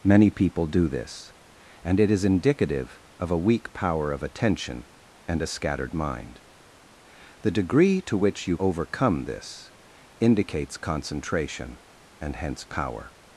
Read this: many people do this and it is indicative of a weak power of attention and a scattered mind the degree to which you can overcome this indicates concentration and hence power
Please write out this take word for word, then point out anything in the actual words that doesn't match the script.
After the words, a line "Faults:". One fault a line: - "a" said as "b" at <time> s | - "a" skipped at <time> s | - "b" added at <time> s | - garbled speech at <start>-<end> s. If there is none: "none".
many people do this and it is indicative of a weak power of attention and a scattered mind the degree to which you overcome this indicates concentration and hence power
Faults:
- "can" skipped at 8.6 s